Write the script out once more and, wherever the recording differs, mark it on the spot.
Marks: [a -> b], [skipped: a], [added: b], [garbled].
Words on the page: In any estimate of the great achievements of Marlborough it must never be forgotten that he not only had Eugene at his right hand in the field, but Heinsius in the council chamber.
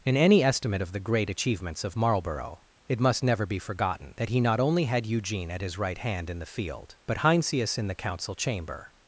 In any estimate of the great achievements of Marlborough it must never be forgotten that he not only had Eugene at his right hand in the field, but Heinsius in the council chamber.